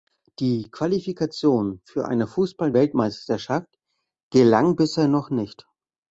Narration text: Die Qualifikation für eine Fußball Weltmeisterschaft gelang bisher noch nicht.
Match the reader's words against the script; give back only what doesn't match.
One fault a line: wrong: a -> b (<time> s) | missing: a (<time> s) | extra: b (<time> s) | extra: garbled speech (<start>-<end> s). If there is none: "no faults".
no faults